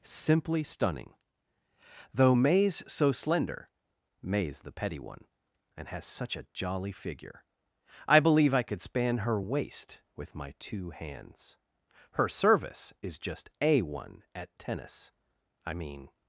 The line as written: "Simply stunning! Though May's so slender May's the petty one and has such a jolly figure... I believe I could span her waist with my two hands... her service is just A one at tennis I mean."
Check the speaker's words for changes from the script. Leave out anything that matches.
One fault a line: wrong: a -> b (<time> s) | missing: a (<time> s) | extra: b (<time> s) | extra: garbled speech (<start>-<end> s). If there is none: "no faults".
no faults